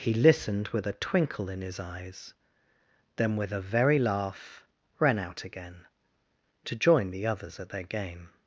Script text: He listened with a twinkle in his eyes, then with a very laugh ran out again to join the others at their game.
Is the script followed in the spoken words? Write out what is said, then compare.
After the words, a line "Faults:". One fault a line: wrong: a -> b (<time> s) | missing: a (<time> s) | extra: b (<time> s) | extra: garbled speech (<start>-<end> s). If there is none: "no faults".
He listened with a twinkle in his eyes, then with a very laugh ran out again to join the others at their game.
Faults:
no faults